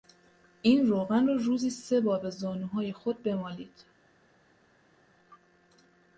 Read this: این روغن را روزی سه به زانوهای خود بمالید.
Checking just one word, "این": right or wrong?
right